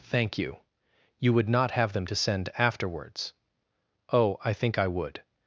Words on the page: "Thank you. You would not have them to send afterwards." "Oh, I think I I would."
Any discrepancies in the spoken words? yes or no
yes